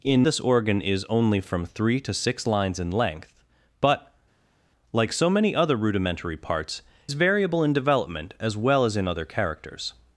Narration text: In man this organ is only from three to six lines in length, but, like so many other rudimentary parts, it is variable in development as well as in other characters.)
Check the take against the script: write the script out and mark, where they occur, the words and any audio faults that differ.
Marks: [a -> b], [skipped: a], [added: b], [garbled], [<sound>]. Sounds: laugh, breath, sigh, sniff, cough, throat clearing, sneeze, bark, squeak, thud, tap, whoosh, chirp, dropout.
In [skipped: man] this organ is only from three to six lines in length, but, like so many other rudimentary parts, [skipped: it] is variable in development as well as in other characters.)